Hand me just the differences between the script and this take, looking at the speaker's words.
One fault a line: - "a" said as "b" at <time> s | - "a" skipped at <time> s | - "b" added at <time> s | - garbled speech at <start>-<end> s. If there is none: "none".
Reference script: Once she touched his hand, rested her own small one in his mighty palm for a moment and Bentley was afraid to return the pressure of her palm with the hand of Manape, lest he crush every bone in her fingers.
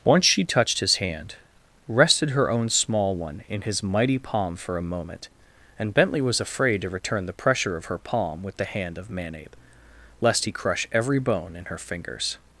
none